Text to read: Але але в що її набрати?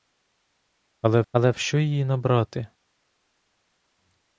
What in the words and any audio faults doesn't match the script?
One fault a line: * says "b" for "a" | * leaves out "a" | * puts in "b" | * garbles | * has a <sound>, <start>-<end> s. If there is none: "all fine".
all fine